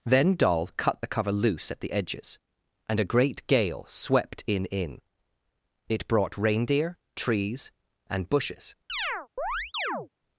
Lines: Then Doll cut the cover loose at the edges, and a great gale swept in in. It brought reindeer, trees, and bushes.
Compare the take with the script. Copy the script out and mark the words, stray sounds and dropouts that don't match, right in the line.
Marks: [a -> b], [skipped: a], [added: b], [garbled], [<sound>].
Then Doll cut the cover loose at the edges, and a great gale swept in in. It brought reindeer, trees, and bushes. [chirp]